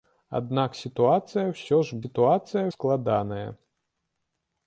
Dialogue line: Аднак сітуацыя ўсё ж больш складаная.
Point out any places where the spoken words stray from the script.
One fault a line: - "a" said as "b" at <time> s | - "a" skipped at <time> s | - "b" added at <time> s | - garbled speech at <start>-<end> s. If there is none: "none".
- "больш" said as "сітуацыя" at 2.0 s